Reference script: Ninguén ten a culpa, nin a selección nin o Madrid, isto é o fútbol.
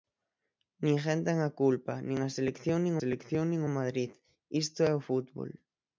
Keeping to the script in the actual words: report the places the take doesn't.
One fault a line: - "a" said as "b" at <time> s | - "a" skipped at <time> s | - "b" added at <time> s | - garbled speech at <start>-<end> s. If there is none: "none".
- "selección nin" added at 3.0 s